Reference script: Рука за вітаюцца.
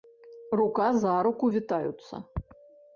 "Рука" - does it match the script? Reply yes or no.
yes